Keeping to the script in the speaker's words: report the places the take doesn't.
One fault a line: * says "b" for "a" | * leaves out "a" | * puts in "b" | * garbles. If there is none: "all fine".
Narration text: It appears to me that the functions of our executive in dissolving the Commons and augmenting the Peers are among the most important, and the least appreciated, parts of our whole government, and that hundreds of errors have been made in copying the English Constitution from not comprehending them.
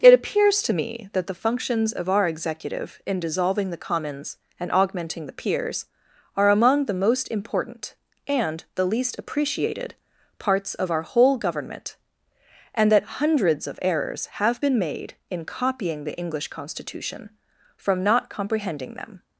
all fine